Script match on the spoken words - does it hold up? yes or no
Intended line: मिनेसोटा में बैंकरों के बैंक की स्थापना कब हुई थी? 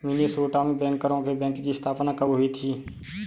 yes